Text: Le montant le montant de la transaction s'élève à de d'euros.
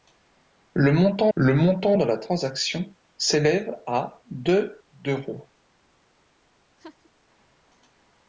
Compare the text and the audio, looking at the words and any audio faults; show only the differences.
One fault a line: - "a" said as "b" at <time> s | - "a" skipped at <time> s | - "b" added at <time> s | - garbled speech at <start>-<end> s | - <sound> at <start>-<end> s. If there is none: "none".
- laugh at 6.8-7.1 s